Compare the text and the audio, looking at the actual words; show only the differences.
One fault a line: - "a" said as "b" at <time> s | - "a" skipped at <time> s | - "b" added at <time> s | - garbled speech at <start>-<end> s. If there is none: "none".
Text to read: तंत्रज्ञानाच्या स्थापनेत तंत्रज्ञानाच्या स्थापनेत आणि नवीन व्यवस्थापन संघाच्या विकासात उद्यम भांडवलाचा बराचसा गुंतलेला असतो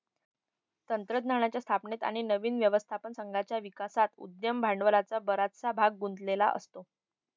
- "तंत्रज्ञानाच्या स्थापनेत" skipped at 2.0 s
- "भाग" added at 5.7 s